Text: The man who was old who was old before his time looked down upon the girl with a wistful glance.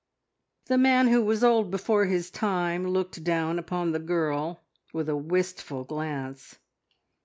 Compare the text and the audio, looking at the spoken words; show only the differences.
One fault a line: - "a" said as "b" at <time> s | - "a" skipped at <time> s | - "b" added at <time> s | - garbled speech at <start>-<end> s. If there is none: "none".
- "who was old" skipped at 1.7 s